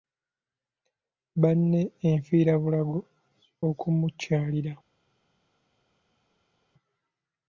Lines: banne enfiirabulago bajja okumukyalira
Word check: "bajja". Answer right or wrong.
wrong